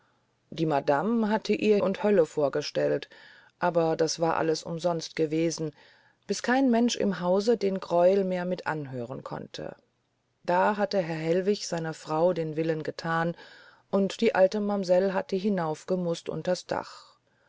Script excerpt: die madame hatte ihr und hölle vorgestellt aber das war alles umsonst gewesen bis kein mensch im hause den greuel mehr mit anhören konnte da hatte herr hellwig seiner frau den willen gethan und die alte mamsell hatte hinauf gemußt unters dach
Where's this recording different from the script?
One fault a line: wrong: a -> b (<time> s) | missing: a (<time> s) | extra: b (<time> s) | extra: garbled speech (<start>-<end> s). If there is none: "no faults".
no faults